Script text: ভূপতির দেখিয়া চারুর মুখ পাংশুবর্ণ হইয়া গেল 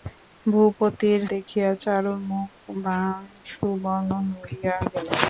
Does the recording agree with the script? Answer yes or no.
yes